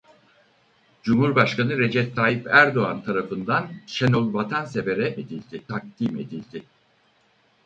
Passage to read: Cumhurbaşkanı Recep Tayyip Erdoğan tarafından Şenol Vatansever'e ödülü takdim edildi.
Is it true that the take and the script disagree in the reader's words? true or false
true